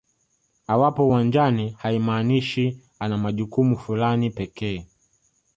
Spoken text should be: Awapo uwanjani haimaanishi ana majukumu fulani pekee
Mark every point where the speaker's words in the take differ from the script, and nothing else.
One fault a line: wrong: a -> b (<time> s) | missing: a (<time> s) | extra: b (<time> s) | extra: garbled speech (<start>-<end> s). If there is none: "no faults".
no faults